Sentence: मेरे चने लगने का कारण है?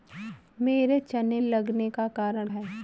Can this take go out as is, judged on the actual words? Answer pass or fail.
pass